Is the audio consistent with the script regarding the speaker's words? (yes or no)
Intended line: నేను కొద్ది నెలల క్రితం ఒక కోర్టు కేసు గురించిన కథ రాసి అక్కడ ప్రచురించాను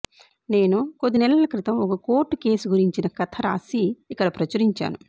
no